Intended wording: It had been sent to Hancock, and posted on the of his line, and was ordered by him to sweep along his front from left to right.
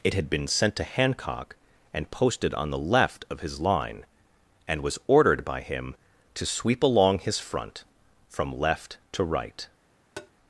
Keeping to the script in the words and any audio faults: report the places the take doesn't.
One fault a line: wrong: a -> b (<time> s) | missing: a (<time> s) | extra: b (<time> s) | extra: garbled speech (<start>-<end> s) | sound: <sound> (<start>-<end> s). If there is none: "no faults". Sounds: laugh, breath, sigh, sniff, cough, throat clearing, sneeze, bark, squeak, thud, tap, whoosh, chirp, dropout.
extra: left (2.8 s)
sound: tap (10.2-10.3 s)